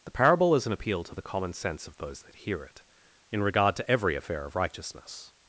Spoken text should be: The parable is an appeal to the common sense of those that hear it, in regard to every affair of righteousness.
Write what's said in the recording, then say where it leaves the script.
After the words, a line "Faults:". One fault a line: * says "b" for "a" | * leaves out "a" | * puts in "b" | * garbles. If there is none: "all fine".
The parable is an appeal to the common sense of those that hear it, in regard to every affair of righteousness.
Faults:
all fine